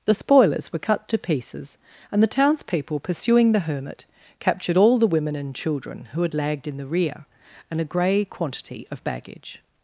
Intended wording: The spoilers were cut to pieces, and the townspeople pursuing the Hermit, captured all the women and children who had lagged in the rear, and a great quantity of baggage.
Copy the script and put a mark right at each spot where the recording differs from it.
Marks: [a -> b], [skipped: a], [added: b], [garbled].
The spoilers were cut to pieces, and the townspeople pursuing the Hermit, captured all the women and children who had lagged in the rear, and a [great -> grey] quantity of baggage.